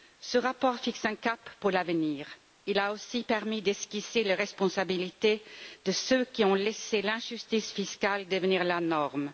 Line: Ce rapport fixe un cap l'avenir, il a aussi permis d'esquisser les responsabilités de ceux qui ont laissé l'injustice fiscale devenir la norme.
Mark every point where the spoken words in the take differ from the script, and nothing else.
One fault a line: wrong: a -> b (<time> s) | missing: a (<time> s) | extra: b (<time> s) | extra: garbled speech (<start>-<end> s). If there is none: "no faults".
extra: pour (1.6 s)